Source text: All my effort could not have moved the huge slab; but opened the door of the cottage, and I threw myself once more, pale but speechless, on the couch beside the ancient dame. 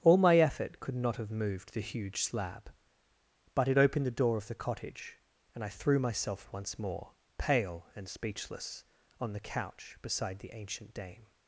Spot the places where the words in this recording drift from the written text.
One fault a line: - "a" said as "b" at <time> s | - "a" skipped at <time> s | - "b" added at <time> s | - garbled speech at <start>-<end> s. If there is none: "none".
- "it" added at 3.7 s
- "but" said as "and" at 8.0 s